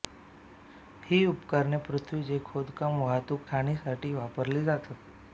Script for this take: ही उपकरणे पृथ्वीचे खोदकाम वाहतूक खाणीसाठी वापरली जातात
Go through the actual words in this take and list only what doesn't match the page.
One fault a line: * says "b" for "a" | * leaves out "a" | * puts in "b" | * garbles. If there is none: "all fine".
all fine